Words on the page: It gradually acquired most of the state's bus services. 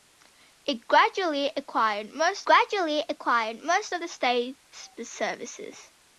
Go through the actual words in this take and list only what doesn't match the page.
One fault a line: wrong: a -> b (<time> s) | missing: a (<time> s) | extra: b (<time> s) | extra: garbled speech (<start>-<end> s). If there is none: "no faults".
extra: gradually acquired most (2.4 s)
missing: bus (4.9 s)